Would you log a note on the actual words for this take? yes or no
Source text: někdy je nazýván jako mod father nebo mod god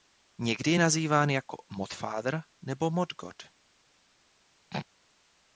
no